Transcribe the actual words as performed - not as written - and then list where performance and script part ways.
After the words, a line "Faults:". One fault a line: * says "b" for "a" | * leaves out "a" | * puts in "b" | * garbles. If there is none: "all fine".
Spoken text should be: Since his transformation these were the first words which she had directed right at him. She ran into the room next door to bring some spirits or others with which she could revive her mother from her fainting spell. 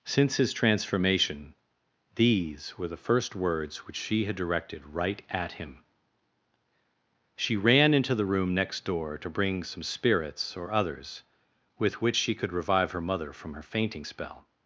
Since his transformation these were the first words which she had directed right at him. She ran into the room next door to bring some spirits or others with which she could revive her mother from her fainting spell.
Faults:
all fine